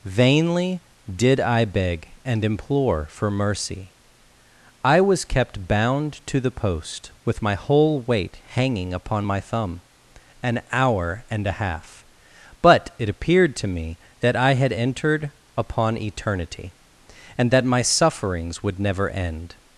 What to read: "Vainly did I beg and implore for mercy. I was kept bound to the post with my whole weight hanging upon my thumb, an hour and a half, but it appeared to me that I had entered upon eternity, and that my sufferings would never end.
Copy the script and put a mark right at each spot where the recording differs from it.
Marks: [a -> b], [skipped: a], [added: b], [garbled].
"Vainly did I beg and implore for mercy. I was kept bound to the post with my whole weight hanging upon my thumb, an hour and a half, but it appeared to me that I had entered upon eternity, and that my sufferings would never end.